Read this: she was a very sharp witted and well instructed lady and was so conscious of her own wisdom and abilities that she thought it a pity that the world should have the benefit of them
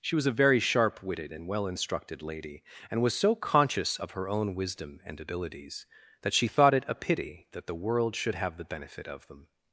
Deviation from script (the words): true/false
false